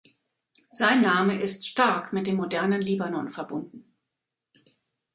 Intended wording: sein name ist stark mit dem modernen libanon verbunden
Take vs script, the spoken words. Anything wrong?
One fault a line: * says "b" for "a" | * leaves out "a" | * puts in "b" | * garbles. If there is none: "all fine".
all fine